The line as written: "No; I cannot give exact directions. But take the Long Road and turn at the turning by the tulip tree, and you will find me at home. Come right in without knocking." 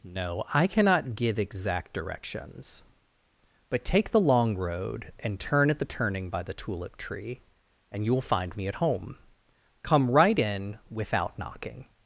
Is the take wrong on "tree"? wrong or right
right